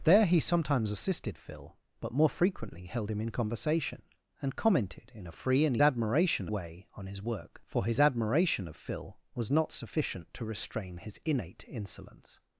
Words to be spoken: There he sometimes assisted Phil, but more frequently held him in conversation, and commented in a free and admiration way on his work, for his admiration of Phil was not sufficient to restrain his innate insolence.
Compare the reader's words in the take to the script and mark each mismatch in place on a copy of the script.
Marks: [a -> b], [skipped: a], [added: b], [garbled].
There he sometimes assisted Phil, but more frequently held him in conversation, and commented in a free and admiration way on his work, for his admiration of Phil was not sufficient to restrain his innate insolence.